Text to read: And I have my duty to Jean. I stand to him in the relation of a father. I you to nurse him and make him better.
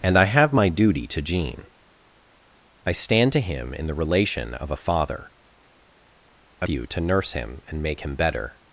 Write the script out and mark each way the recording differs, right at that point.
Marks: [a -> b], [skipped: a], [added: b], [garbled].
And I have my duty to Jean. I stand to him in the relation of a father. I you to nurse him and make him better.